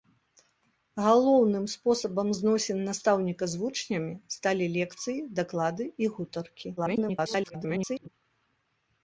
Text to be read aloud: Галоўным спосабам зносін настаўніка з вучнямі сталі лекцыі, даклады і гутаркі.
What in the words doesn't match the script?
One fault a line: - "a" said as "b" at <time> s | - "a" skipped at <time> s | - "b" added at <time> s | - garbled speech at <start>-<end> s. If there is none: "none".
- garbled speech at 6.8-8.1 s